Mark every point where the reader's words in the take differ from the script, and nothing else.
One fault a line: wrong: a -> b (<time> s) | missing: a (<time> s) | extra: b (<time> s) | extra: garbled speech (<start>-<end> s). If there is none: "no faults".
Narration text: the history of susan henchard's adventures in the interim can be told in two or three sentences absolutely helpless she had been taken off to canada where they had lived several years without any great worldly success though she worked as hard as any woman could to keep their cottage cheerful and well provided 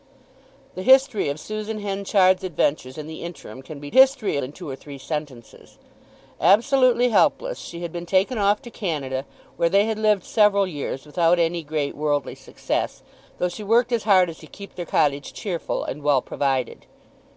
wrong: told -> history (3.9 s)
missing: any woman could (14.4 s)